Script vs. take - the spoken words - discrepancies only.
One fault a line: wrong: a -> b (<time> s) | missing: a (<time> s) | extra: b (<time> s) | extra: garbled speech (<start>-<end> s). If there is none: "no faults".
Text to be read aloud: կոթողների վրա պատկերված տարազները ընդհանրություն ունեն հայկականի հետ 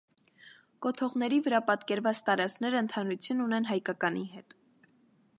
no faults